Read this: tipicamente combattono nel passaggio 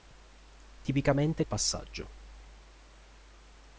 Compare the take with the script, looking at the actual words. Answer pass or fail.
fail